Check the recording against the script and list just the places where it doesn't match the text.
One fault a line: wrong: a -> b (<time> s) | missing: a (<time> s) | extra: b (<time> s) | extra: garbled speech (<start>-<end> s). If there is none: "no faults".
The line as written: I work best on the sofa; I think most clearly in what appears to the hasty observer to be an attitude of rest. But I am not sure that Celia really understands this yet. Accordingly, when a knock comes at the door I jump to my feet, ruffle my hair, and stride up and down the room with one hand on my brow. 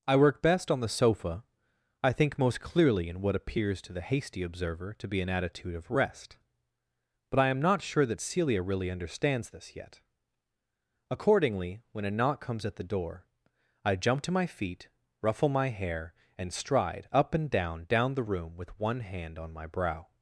extra: down (17.9 s)